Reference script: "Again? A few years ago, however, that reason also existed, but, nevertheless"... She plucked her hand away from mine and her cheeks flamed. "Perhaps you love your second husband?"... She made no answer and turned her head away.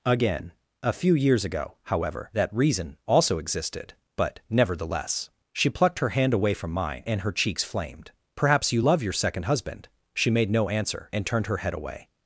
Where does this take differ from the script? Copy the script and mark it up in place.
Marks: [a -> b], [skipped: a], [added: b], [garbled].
"Again? A few years ago, however, that reason also existed, but, nevertheless"... She plucked her hand away from mine and her cheeks flamed. "Perhaps you love your second husband?"... She made no answer and turned her head away.